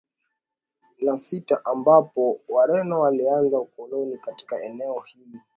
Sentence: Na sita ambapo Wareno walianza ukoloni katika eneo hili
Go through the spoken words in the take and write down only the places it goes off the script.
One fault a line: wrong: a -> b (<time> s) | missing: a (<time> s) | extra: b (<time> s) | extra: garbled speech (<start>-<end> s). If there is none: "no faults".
no faults